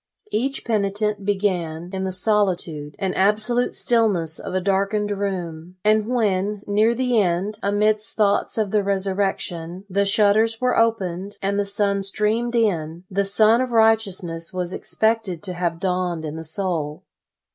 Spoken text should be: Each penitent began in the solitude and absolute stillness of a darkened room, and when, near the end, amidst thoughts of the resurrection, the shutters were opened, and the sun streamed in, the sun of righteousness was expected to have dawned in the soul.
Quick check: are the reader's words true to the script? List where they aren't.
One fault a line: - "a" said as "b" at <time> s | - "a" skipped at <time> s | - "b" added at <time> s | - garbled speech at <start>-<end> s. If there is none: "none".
none